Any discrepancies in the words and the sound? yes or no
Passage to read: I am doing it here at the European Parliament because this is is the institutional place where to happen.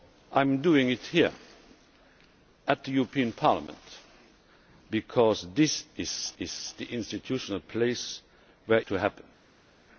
no